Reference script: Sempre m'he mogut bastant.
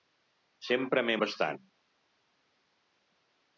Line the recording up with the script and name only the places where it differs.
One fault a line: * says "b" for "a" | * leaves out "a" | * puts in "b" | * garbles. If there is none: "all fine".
* leaves out "mogut"